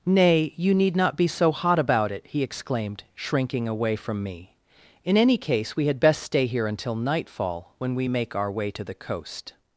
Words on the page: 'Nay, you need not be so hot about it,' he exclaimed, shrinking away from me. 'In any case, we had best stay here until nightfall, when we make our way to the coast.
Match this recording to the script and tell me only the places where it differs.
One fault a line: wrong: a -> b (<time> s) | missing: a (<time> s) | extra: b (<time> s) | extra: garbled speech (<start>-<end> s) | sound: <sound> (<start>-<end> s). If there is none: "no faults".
no faults